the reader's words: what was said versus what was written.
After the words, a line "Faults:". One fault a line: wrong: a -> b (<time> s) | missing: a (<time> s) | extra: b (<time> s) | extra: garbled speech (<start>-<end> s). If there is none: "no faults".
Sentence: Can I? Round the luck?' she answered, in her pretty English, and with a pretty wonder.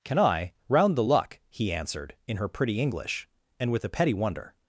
Can I? Round the luck?' he answered, in her pretty English, and with a petty wonder.
Faults:
wrong: she -> he (1.5 s)
wrong: pretty -> petty (3.9 s)